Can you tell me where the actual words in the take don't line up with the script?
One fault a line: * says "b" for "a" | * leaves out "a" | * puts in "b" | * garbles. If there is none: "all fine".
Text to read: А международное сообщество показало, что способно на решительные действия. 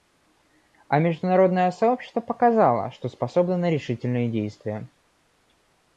all fine